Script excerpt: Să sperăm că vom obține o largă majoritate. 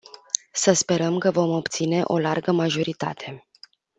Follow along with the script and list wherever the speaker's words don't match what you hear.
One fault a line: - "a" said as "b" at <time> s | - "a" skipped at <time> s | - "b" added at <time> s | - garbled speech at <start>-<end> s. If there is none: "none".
none